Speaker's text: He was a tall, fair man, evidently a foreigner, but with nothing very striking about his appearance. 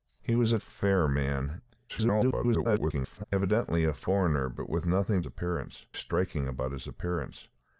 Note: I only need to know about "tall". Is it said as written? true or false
false